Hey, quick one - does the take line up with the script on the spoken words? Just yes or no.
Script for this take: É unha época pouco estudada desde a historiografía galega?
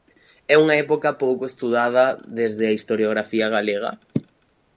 yes